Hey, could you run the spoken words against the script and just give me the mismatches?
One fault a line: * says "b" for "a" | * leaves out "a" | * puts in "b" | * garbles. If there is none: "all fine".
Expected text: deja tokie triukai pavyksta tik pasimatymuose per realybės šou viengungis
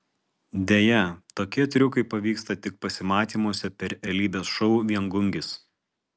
all fine